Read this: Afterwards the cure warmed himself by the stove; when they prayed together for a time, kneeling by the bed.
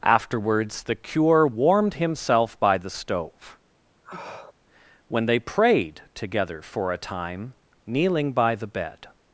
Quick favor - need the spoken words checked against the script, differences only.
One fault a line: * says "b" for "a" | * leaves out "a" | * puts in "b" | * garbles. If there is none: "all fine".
all fine